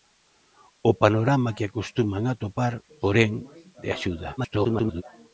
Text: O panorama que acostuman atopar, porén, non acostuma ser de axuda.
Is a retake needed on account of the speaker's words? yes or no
yes